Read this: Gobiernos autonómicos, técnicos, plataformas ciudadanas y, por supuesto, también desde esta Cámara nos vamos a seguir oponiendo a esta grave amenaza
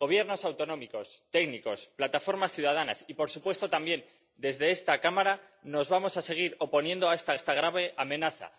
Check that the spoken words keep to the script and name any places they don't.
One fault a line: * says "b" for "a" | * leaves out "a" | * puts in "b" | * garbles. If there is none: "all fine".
* puts in "esta"